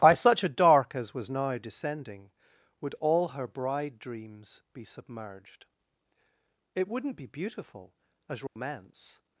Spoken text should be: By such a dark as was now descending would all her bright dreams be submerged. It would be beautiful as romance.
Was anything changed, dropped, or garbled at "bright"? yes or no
yes